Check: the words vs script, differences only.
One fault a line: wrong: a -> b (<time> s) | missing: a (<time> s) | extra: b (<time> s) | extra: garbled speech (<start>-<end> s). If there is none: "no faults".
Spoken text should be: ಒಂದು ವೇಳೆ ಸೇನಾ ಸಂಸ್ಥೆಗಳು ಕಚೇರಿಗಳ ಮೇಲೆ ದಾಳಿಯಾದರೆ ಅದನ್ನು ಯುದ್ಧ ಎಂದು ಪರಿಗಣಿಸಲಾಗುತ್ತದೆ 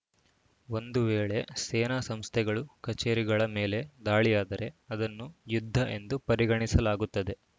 no faults